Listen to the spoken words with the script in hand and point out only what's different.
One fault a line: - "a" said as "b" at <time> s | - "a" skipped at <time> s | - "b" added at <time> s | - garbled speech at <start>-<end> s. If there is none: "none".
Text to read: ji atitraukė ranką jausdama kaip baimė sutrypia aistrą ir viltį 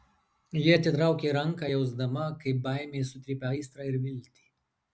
none